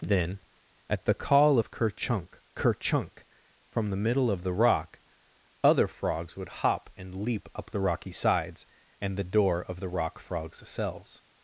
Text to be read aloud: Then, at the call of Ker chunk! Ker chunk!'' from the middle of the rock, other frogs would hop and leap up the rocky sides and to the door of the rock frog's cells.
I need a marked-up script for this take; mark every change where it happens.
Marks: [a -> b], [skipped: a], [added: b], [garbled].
Then, at the call of Ker chunk! Ker chunk!'' from the middle of the rock, other frogs would hop and leap up the rocky sides and [skipped: to] the door of the rock frog's cells.